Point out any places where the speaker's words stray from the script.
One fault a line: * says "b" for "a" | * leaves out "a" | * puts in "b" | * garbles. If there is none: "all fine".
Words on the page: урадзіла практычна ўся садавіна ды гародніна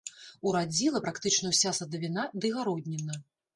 all fine